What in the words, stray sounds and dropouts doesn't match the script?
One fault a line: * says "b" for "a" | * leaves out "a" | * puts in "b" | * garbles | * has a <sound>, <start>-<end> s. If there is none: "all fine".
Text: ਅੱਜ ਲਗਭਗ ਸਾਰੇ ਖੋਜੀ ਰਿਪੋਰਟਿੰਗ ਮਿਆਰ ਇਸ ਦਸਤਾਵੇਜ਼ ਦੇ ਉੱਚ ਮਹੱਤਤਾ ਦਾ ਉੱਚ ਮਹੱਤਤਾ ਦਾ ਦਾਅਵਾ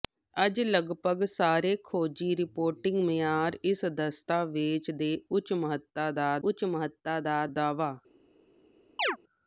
* has a chirp, 9.0-9.2 s